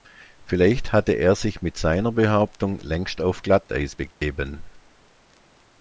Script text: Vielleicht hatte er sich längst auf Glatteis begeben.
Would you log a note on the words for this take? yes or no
yes